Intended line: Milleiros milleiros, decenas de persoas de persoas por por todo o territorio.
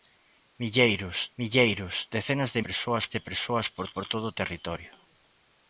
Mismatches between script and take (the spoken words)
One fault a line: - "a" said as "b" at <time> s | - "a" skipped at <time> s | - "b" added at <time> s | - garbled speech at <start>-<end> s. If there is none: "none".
none